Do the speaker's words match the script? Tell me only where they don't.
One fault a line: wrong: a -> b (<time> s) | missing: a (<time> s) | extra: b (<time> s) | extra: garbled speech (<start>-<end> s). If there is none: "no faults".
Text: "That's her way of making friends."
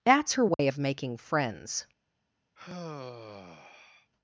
no faults